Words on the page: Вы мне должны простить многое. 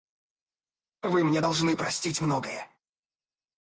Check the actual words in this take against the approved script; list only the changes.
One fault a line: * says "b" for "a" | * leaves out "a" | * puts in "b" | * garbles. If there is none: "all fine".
all fine